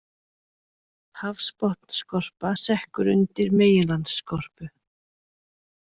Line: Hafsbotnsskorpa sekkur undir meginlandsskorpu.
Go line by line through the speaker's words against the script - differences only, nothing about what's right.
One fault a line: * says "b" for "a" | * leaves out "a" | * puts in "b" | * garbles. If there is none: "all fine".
all fine